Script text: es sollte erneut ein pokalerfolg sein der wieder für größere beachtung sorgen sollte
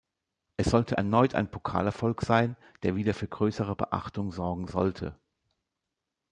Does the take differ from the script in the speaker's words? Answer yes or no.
no